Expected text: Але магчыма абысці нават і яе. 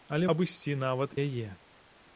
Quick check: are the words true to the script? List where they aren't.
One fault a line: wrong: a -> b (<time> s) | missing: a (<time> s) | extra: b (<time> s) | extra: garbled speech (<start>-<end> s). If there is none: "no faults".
missing: магчыма (0.3 s)
missing: і (1.2 s)